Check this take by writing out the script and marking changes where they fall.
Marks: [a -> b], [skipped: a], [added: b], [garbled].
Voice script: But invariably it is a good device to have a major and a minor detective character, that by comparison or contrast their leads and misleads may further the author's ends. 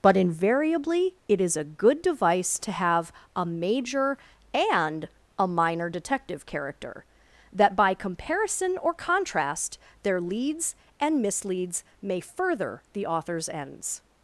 But invariably it is a good device to have a major and a minor detective character, that by comparison or contrast their leads and misleads may further the author's ends.